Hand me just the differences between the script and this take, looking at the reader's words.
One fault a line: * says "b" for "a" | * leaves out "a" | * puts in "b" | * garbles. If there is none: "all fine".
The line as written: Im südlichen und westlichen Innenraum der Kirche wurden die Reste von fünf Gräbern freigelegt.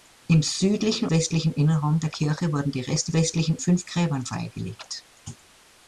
* leaves out "und"
* says "westlichen" for "von"